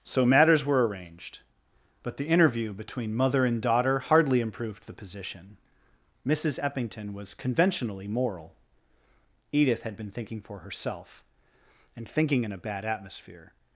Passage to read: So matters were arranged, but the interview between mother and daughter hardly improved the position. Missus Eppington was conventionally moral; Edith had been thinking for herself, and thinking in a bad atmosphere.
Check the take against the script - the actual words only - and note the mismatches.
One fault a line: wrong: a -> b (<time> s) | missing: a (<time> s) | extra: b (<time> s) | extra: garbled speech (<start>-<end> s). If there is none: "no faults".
no faults